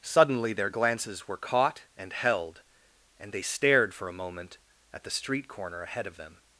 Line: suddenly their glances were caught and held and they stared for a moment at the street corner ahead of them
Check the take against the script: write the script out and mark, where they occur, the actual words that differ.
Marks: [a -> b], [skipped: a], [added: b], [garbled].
suddenly their glances were caught and held and they stared for a moment at the street corner ahead of them